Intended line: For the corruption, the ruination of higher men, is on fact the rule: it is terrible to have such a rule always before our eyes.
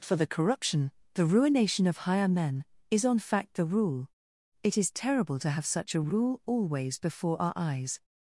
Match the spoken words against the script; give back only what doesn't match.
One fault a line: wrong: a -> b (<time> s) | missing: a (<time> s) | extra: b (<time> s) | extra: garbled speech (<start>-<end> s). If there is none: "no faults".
no faults